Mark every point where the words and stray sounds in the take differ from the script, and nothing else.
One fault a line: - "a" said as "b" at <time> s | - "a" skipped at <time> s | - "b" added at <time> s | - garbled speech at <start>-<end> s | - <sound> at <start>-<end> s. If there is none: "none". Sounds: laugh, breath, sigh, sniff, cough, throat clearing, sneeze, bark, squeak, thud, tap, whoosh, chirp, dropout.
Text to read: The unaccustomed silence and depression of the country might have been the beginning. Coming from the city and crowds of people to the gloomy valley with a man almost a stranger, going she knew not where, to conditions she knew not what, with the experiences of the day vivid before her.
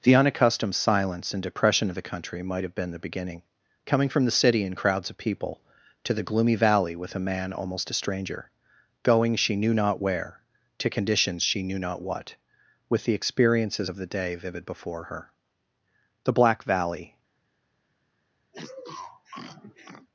- "The black valley" added at 16.2 s
- sniff at 18.5-20.1 s